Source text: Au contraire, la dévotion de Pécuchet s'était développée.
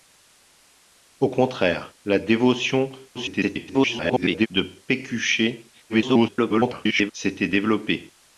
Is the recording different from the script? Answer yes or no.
yes